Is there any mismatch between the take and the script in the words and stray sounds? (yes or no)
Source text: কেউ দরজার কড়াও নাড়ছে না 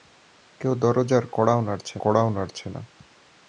yes